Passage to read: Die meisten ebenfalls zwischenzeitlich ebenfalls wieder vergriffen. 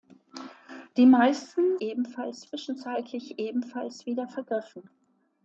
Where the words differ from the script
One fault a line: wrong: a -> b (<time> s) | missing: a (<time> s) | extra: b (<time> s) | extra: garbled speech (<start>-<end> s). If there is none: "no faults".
no faults